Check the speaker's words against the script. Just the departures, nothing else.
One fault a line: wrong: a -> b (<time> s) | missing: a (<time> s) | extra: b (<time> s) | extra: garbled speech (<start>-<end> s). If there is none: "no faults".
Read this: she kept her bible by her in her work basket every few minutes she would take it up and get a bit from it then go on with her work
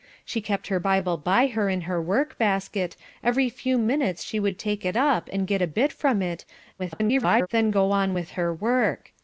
extra: garbled speech (6.8-7.5 s)